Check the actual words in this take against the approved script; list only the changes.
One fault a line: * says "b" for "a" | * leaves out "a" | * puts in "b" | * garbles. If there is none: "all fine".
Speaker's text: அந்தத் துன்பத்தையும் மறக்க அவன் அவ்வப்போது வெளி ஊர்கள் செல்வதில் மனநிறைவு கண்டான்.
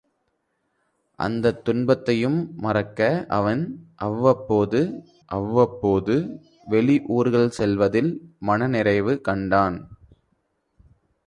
* puts in "அவ்வப்போது"